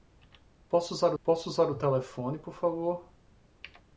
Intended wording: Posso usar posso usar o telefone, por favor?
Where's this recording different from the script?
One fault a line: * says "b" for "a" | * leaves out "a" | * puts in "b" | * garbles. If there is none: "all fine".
all fine